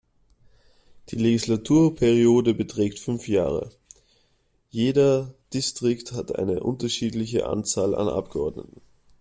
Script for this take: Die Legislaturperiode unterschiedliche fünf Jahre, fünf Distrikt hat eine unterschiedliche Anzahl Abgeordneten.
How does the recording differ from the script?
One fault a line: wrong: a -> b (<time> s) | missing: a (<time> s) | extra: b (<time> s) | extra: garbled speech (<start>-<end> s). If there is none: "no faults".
wrong: unterschiedliche -> beträgt (2.5 s)
wrong: fünf -> jeder (4.7 s)
extra: an (7.9 s)